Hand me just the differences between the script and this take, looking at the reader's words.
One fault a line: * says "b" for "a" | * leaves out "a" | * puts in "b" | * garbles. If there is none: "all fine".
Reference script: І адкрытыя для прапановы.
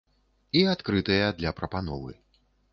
all fine